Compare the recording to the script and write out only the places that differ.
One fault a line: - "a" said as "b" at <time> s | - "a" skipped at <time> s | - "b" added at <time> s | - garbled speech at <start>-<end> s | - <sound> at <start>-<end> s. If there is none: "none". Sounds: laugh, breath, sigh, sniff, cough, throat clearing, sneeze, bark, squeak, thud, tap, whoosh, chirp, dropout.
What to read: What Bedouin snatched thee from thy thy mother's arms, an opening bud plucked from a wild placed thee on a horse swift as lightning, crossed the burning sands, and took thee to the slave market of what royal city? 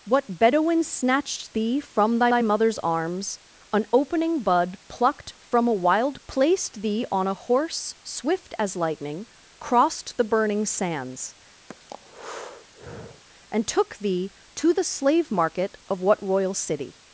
- breath at 11.7-13.2 s